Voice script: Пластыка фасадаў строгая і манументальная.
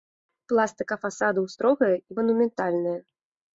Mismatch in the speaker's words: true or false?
false